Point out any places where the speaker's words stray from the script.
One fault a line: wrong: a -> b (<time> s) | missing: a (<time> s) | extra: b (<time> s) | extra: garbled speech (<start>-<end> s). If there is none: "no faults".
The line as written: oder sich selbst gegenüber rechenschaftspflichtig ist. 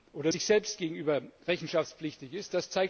no faults